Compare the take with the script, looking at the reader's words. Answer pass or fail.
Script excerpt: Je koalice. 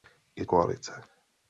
pass